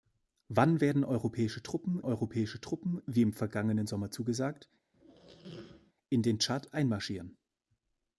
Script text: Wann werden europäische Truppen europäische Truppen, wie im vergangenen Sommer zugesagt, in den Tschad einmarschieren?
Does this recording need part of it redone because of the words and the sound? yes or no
yes